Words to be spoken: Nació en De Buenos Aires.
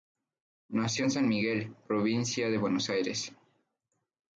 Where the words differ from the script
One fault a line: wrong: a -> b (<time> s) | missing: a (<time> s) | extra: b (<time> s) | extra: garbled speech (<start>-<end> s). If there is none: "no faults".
extra: San Miguel provincia (1.1 s)